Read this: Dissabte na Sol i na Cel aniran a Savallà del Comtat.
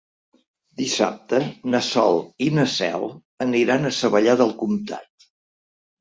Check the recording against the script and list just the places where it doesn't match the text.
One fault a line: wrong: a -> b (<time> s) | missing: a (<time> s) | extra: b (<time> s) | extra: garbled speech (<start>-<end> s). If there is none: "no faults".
no faults